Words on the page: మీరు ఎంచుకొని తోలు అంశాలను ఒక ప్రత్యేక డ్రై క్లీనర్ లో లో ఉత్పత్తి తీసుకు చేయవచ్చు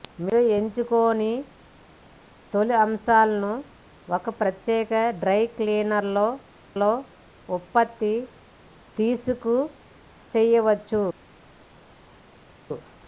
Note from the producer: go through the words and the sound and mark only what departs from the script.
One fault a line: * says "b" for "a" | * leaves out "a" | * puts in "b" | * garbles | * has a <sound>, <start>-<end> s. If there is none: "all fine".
all fine